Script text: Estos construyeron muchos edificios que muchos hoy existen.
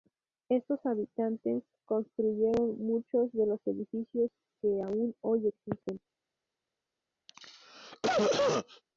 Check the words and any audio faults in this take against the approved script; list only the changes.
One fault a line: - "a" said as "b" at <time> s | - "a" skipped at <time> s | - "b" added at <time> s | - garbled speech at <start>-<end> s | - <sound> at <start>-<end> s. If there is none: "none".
- "habitantes" added at 0.8 s
- "de los" added at 3.3 s
- "muchos" said as "aún" at 4.8 s
- cough at 7.3-8.8 s